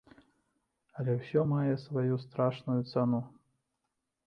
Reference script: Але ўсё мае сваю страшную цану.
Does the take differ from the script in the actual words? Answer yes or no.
no